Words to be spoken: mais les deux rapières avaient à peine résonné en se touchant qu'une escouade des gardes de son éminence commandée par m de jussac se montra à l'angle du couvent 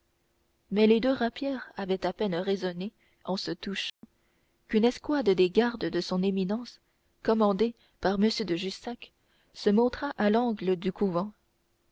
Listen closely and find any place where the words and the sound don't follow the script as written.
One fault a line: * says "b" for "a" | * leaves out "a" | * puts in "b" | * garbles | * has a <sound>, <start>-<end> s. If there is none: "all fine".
* has a dropout, 3.9-4.0 s